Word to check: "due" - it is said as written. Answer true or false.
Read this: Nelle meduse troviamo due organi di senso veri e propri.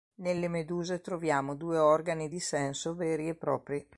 true